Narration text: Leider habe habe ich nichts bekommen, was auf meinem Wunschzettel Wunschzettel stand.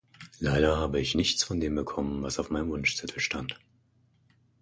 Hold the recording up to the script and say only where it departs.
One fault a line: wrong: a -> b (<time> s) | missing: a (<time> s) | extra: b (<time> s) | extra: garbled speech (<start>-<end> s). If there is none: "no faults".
missing: habe (1.0 s)
extra: von dem (1.4 s)
missing: Wunschzettel (3.2 s)